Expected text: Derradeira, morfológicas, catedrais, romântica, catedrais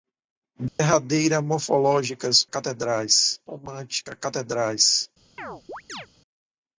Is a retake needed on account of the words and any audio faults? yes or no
yes